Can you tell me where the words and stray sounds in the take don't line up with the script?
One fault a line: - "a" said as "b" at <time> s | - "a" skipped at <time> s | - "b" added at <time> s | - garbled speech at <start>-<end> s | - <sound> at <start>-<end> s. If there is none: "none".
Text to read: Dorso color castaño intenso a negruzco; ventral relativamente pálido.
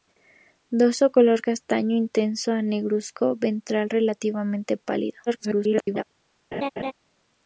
- garbled speech at 5.3-6.0 s
- laugh at 6.5-6.9 s